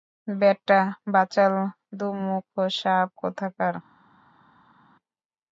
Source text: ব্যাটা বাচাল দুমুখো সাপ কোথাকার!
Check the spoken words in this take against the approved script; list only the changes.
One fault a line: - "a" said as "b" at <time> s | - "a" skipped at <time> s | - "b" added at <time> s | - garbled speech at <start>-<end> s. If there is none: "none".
none